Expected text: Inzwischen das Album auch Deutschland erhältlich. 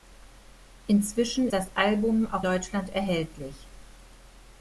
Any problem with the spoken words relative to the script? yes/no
no